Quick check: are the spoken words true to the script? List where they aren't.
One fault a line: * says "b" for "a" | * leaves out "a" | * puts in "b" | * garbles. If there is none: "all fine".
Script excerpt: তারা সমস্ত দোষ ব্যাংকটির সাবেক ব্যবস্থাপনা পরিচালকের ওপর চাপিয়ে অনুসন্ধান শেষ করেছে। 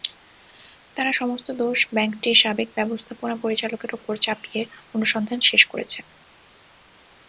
all fine